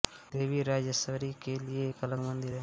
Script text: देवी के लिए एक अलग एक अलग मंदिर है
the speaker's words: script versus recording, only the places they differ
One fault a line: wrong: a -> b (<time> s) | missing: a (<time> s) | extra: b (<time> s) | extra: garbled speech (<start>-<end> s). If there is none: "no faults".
extra: राजराजेश्वरी (0.6 s)
missing: एक अलग (2.2 s)